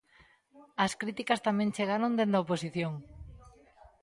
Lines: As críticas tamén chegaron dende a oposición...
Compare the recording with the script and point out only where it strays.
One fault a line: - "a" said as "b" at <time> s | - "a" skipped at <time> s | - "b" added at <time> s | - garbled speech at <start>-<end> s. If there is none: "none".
none